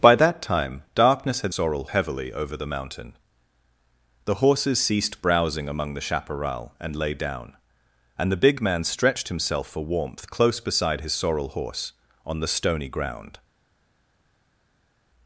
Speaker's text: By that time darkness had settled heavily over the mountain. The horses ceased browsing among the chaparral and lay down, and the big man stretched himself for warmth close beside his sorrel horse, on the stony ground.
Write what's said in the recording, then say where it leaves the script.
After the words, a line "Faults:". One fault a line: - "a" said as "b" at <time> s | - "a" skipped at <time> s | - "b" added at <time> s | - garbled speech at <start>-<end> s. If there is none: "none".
By that time darkness had sorrel heavily over the mountain. The horses ceased browsing among the chaparral and lay down, and the big man stretched himself for warmth close beside his sorrel horse, on the stony ground.
Faults:
- "settled" said as "sorrel" at 1.5 s